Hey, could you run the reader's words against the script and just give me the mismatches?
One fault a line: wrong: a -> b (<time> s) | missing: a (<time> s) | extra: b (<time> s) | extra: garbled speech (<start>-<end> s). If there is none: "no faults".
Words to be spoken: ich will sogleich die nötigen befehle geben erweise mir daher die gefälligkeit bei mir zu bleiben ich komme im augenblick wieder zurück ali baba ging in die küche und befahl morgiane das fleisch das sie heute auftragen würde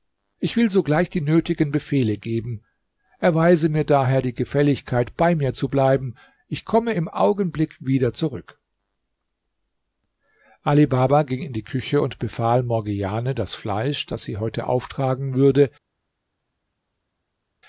no faults